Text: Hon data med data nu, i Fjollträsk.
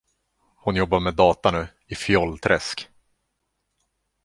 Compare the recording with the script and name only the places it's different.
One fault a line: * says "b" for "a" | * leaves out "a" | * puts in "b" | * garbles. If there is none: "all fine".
* says "jobbar" for "data"